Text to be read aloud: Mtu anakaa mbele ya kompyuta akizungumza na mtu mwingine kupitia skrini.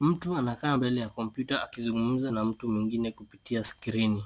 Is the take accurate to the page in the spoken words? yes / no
yes